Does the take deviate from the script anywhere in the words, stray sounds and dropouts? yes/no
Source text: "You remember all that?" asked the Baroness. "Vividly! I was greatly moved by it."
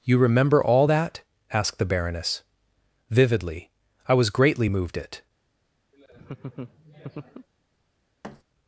yes